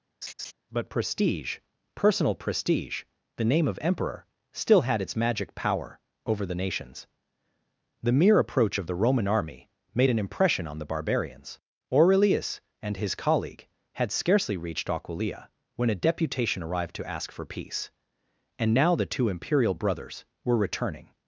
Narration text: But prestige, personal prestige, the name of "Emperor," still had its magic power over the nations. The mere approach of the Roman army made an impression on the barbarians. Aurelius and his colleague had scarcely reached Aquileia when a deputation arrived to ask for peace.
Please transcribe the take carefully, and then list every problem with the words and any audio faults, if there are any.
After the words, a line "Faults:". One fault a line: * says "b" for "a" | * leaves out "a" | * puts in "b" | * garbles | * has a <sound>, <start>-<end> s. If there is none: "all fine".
But prestige, personal prestige, the name of "Emperor," still had its magic power over the nations. The mere approach of the Roman army made an impression on the barbarians. Aurelius and his colleague had scarcely reached Aquileia when a deputation arrived to ask for peace. And now the two imperial "brothers" were returning
Faults:
* has a laugh, 0.2-0.5 s
* puts in "And now the two imperial brothers were returning"